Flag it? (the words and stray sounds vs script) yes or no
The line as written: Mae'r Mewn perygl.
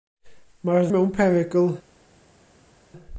no